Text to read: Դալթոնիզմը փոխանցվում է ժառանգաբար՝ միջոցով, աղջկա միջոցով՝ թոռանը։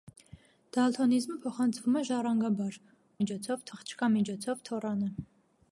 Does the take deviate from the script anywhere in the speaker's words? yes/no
no